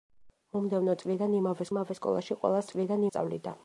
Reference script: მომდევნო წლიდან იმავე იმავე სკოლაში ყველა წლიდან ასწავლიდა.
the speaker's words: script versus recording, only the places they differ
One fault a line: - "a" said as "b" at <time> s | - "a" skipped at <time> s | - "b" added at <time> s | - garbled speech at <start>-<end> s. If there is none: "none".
none